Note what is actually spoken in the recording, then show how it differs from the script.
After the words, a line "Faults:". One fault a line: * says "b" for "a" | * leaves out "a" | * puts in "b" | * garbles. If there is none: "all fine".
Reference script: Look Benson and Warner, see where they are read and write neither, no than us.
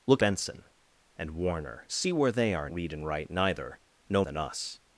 Look Benson and Warner, see where they are read and write neither, no than us.
Faults:
all fine